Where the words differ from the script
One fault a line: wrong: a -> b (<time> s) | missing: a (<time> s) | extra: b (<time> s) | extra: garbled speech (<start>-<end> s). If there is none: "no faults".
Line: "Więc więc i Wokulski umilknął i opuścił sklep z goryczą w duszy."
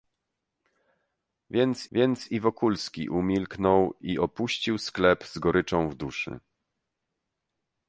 no faults